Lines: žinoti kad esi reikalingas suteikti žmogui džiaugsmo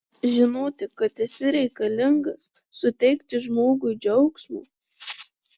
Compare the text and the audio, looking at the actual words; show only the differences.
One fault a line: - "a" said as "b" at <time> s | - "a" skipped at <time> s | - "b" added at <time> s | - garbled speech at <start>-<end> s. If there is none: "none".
none